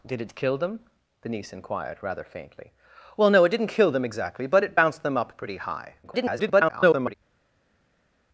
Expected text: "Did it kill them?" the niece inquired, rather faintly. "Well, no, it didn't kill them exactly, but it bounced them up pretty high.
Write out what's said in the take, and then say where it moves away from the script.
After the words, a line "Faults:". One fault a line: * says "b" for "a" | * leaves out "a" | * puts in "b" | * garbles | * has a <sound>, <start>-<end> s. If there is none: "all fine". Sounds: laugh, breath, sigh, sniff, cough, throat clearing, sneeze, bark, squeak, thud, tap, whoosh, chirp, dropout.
"Did it kill them?" the niece inquired, rather faintly. "Well, no, it didn't kill them exactly, but it bounced them up pretty high. [garbled]
Faults:
* garbles